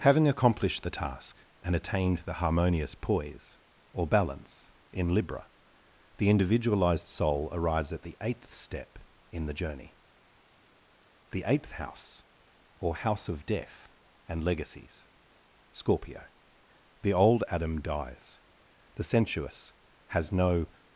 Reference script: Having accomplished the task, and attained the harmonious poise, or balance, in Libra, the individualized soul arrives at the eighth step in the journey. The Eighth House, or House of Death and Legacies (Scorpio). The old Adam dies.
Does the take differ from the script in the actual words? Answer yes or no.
yes